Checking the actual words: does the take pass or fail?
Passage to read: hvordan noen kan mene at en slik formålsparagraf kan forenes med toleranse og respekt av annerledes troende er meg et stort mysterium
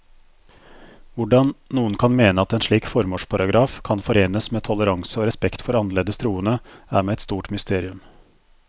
fail